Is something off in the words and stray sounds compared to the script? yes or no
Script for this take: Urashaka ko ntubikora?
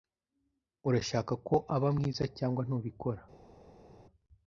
yes